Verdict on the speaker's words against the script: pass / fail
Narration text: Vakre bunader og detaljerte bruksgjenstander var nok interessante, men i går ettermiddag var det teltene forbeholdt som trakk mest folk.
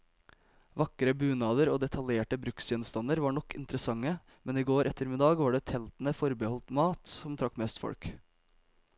fail